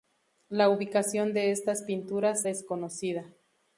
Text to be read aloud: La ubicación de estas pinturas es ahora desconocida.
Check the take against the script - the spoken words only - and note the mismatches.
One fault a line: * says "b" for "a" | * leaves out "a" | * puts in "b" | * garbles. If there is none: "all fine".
* leaves out "es ahora"